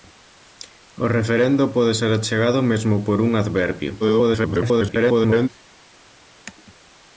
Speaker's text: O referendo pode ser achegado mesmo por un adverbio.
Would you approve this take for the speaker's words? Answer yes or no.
no